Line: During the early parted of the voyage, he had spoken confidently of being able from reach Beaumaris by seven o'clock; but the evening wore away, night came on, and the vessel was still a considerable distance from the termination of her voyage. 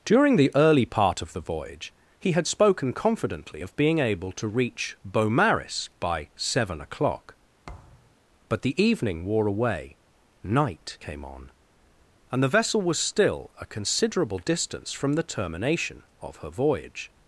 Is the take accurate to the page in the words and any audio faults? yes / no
no